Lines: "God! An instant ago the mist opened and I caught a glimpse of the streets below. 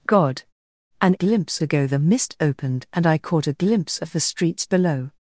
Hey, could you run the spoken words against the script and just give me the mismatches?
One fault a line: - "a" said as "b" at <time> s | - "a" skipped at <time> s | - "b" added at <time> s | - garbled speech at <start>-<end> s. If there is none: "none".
- "instant" said as "glimpse" at 1.1 s